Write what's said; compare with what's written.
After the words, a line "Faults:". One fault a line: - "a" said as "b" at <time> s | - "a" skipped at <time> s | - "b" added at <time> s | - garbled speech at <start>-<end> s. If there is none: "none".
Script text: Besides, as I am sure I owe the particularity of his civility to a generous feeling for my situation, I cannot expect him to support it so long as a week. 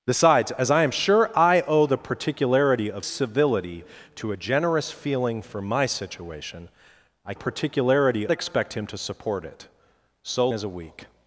Besides, as I am sure I owe the particularity of civility to a generous feeling for my situation, I particularity expect him to support it so as a week.
Faults:
- "his" skipped at 3.0 s
- "cannot" said as "particularity" at 7.3 s
- "long" skipped at 10.5 s